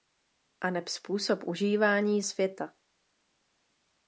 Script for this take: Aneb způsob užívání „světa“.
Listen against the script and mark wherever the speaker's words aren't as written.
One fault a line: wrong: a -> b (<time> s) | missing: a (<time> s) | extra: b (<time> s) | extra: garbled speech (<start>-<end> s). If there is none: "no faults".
no faults